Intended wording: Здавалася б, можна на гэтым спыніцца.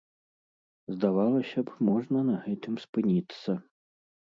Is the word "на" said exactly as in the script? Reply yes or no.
yes